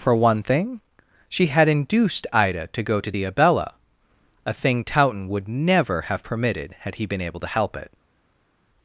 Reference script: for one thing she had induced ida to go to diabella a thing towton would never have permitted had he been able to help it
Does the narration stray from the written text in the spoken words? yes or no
no